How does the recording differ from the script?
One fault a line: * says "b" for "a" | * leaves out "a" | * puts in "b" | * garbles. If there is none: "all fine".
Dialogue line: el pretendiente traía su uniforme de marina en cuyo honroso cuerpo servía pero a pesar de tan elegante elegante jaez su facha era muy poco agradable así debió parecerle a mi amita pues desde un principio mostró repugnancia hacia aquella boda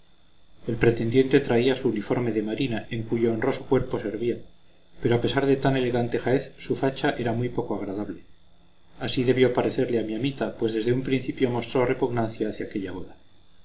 * leaves out "elegante"